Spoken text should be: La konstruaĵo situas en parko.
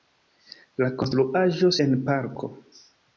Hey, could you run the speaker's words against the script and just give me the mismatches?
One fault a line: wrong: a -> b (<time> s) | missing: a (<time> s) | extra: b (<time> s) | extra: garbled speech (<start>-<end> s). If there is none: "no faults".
missing: situas (1.7 s)